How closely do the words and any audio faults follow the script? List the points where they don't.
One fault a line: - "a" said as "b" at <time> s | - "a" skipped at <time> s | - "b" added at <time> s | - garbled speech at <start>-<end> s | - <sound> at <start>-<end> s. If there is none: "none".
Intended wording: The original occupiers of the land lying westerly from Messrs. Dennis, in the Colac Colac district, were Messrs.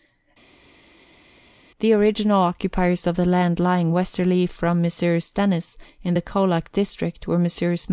- "Colac" skipped at 6.7 s